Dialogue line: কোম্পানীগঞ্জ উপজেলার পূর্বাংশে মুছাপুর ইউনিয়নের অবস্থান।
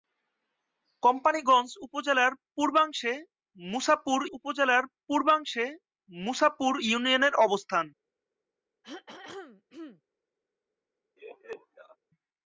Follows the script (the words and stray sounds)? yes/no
no